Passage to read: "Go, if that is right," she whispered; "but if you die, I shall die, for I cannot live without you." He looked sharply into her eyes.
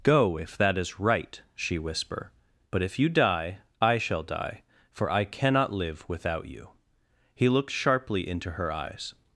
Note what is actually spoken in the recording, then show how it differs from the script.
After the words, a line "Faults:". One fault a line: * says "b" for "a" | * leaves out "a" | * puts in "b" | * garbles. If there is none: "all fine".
"Go, if that is right," she whisper; "but if you die, I shall die, for I cannot live without you." He looked sharply into her eyes.
Faults:
* says "whisper" for "whispered"